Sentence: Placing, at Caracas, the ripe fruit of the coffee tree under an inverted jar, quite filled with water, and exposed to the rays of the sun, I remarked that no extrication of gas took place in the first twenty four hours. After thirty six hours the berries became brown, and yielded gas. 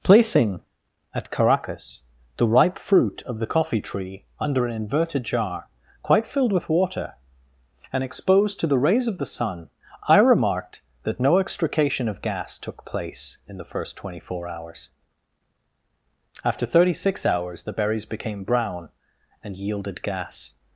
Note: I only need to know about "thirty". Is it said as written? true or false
true